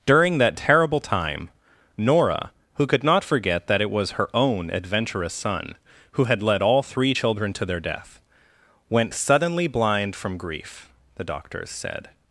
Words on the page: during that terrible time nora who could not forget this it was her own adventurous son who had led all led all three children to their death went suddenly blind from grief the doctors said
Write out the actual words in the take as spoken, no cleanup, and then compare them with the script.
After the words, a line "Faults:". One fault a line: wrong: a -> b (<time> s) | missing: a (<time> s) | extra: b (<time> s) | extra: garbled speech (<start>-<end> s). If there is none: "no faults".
during that terrible time nora who could not forget that it was her own adventurous son who had led all three children to their death went suddenly blind from grief the doctors said
Faults:
wrong: this -> that (3.7 s)
missing: led all (6.8 s)